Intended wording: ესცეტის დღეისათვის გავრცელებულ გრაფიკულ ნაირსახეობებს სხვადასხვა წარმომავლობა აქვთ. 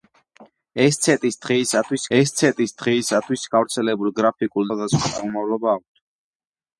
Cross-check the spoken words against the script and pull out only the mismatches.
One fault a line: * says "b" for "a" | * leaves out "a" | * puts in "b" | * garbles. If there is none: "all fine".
* puts in "ესცეტის დღეისათვის"
* leaves out "ნაირსახეობებს"